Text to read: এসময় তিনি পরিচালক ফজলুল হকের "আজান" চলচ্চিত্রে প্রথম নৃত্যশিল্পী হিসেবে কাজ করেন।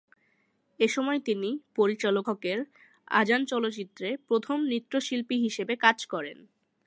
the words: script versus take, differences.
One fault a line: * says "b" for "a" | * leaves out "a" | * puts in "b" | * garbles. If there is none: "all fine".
* leaves out "ফজলুল"